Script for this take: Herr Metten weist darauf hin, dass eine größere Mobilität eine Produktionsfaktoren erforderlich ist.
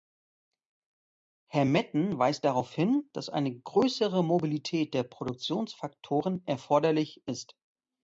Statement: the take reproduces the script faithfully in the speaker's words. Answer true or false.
false